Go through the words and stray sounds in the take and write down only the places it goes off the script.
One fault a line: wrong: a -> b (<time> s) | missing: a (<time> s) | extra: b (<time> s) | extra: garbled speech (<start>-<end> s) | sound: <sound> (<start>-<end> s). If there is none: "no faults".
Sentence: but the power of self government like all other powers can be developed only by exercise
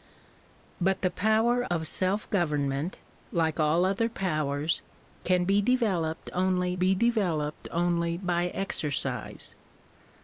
sound: dropout (1.7-1.7 s)
extra: be developed only (6.8 s)